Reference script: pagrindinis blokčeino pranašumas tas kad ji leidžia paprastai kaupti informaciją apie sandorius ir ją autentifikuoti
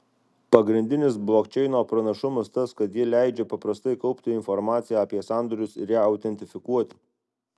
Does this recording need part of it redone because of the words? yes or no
no